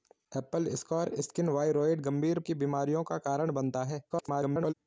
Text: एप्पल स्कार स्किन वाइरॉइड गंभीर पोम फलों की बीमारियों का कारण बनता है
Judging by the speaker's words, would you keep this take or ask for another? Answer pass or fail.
fail